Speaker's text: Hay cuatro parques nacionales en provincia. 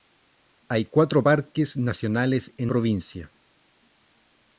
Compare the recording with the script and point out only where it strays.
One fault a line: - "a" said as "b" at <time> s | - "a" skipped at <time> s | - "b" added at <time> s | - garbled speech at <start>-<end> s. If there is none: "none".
none